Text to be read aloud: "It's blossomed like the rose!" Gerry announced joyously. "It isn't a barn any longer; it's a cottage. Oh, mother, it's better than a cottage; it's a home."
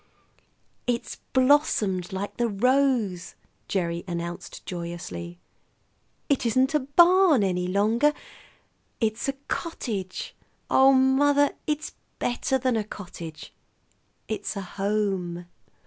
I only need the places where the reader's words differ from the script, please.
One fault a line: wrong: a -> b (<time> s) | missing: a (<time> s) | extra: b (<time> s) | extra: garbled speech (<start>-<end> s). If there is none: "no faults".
no faults